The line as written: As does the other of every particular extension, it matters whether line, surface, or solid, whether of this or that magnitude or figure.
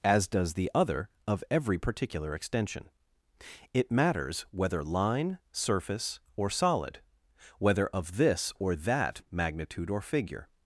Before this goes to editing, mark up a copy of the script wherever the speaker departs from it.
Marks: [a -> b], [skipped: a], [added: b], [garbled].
As does the other of every particular extension, it matters whether line, surface, or solid, whether of this or that magnitude or figure.